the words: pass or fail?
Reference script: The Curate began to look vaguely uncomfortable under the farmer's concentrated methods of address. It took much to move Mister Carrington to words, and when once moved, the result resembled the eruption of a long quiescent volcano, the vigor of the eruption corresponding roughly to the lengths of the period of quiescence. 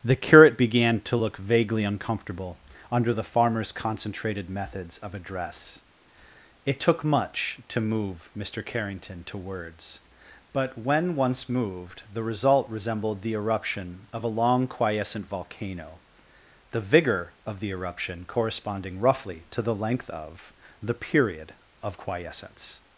fail